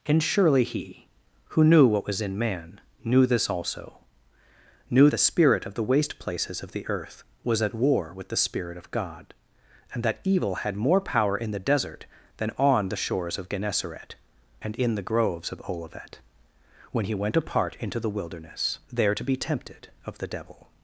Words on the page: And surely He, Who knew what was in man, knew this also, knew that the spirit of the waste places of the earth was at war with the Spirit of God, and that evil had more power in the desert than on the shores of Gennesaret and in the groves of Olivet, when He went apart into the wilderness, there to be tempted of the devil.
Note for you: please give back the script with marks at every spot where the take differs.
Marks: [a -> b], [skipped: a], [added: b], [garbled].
And surely He, Who knew what was in man, knew this also, knew [skipped: that] the spirit of the waste places of the earth was at war with the Spirit of God, and that evil had more power in the desert than on the shores of Gennesaret and in the groves of Olivet, when He went apart into the wilderness, there to be tempted of the devil.